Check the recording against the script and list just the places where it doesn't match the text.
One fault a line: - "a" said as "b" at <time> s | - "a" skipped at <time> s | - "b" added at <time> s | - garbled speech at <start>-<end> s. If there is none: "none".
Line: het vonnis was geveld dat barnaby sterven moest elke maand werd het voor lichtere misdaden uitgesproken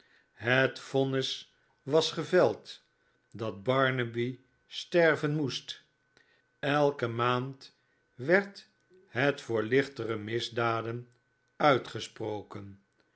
none